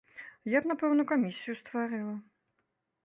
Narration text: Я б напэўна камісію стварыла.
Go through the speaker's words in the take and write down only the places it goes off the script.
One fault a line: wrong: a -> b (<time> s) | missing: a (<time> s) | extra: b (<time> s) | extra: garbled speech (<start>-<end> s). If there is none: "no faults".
no faults